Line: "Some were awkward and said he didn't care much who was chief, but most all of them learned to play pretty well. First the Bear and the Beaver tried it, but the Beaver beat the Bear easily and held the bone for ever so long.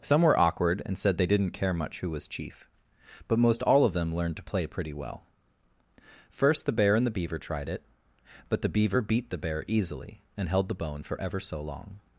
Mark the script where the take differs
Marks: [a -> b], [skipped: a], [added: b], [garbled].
"Some were awkward and said [he -> they] didn't care much who was chief, but most all of them learned to play pretty well. First the Bear and the Beaver tried it, but the Beaver beat the Bear easily and held the bone for ever so long.